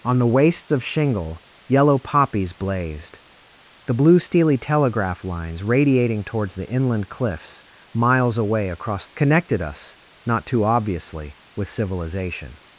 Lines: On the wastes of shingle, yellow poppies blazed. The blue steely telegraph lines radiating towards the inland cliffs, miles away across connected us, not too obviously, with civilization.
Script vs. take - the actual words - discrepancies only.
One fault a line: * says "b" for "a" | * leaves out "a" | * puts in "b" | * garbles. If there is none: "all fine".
all fine